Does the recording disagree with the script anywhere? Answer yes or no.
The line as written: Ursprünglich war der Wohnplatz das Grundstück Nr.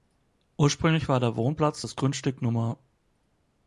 no